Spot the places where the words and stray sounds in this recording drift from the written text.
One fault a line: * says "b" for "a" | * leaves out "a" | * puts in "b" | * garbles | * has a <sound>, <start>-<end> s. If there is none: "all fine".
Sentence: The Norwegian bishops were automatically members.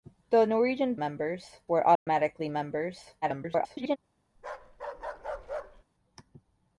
* says "members" for "bishops"
* has a dropout, 2.0-2.1 s
* garbles
* has a bark, 4.4-5.8 s